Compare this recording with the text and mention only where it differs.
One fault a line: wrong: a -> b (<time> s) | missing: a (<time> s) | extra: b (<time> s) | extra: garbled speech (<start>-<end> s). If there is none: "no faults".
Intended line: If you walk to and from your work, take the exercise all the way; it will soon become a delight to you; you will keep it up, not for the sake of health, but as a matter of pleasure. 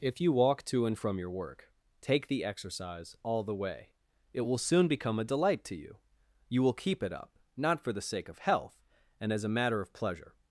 wrong: but -> and (9.2 s)